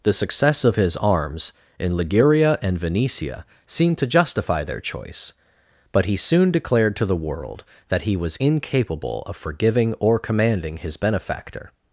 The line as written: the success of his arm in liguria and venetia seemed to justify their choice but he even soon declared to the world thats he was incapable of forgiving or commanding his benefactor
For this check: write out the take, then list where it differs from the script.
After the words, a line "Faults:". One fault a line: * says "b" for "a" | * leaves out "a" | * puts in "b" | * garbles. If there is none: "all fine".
the success of his arms in liguria and venetia seemed to justify their choice but he soon declared to the world that he was incapable of forgiving or commanding his benefactor
Faults:
* says "arms" for "arm"
* leaves out "even"
* says "that" for "thats"